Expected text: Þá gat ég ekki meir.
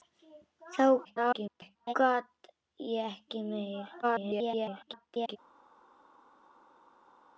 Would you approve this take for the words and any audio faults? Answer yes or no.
no